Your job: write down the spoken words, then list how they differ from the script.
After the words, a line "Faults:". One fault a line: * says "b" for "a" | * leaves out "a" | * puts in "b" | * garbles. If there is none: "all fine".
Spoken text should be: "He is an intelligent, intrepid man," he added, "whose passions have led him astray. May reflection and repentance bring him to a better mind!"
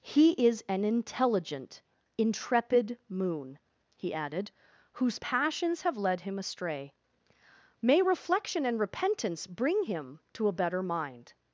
"He is an intelligent, intrepid moon," he added, "whose passions have led him astray. May reflection and repentance bring him to a better mind!"
Faults:
* says "moon" for "man"